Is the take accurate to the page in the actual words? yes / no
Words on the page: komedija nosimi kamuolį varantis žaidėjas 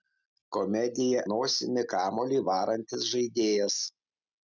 yes